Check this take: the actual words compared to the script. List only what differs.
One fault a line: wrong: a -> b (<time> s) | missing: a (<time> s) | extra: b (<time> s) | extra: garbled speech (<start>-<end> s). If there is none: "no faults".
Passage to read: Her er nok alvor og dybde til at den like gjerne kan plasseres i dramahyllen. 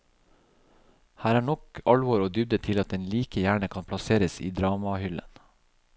no faults